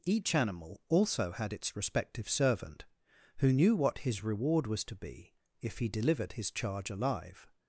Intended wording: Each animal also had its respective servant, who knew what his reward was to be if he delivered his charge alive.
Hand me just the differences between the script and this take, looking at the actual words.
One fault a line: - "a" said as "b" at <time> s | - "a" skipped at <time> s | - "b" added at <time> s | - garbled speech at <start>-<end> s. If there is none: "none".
none